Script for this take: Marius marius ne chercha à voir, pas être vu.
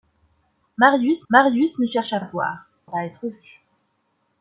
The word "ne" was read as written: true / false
true